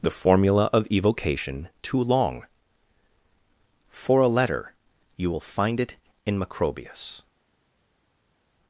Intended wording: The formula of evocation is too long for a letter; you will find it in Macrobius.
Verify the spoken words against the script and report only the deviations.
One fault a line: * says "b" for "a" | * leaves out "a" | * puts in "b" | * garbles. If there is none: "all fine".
* leaves out "is"